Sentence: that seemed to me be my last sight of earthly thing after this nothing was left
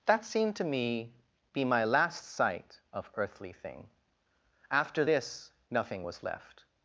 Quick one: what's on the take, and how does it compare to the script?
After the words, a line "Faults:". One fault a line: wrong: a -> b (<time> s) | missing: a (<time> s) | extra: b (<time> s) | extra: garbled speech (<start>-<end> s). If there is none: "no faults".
that seemed to me be my last sight of earthly thing after this nothing was left
Faults:
no faults